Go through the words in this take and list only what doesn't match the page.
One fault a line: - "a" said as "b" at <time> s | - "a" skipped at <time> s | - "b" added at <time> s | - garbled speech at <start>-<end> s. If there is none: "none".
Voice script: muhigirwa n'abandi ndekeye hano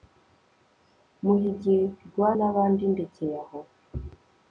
- "hano" said as "aho" at 3.4 s